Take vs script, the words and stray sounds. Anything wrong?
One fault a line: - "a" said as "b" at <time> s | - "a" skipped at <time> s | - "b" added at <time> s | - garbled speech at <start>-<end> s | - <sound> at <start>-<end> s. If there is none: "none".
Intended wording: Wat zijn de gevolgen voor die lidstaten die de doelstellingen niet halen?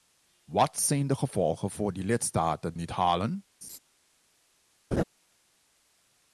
- "die de doelstellingen" skipped at 2.8 s
- laugh at 3.6-3.8 s
- laugh at 4.9-5.0 s